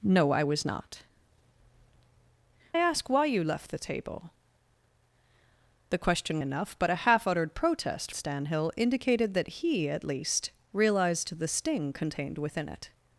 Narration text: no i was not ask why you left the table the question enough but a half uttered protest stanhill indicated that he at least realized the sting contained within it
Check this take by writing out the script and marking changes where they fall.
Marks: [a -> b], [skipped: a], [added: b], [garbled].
no i was not ask why you left the table the question enough but a half uttered protest stanhill indicated that he at least realized the sting contained within it